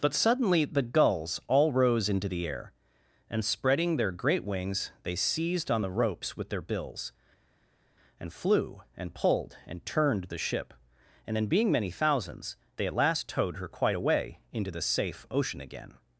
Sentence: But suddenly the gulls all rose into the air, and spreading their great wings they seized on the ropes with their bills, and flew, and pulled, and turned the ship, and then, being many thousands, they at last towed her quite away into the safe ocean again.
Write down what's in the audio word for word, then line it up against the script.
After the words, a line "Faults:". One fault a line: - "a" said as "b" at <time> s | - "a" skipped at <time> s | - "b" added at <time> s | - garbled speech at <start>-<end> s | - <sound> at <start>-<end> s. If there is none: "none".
But suddenly the gulls all rose into the air, and spreading their great wings they seized on the ropes with their bills, and flew, and pulled, and turned the ship, and then, being many thousands, they at last towed her quite away into the safe ocean again.
Faults:
none